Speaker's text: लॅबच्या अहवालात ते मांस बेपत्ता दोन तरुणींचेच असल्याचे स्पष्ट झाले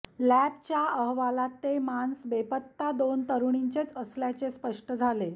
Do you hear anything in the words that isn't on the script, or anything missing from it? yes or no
no